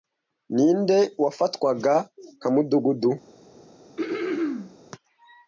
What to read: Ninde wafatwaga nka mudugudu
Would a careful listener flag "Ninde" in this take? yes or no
no